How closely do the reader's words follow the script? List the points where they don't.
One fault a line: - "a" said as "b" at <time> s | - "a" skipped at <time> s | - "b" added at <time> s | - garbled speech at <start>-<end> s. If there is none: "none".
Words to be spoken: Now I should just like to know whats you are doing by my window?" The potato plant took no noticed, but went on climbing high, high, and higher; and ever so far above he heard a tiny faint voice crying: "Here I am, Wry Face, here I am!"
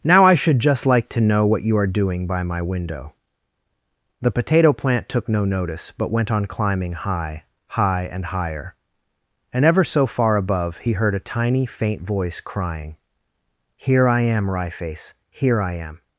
- "whats" said as "what" at 1.4 s
- "noticed" said as "notice" at 5.5 s